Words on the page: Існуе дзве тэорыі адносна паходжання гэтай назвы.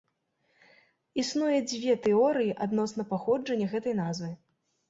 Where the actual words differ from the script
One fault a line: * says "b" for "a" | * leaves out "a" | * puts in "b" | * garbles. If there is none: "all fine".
all fine